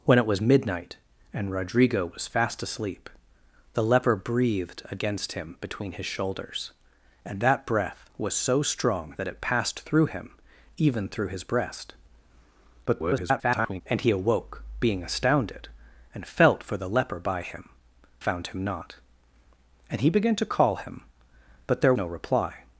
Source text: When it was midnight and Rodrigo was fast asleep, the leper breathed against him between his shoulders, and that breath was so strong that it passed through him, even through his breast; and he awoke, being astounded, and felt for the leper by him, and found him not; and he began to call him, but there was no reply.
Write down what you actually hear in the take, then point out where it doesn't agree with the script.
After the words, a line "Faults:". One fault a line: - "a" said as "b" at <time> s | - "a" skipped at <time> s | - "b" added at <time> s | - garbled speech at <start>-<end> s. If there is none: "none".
When it was midnight and Rodrigo was fast asleep, the leper breathed against him between his shoulders, and that breath was so strong that it passed through him, even through his breast; [garbled] and he awoke, being astounded, and felt for the leper by him, found him not; and he began to call him, but there no reply.
Faults:
- garbled speech at 12.9-13.8 s
- "and" skipped at 17.7 s
- "was" skipped at 21.9 s